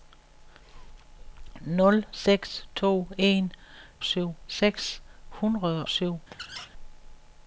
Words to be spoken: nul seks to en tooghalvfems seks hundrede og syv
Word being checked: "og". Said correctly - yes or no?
no